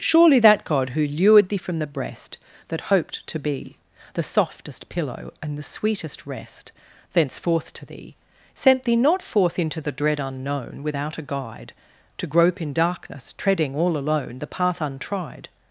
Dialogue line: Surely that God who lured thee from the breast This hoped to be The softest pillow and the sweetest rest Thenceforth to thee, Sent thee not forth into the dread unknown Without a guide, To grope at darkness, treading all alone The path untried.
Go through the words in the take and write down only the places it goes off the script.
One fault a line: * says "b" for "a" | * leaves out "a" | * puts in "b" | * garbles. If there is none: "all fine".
* says "That" for "This"
* says "in" for "at"